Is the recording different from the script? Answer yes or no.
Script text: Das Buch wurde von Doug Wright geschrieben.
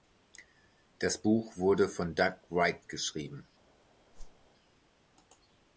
no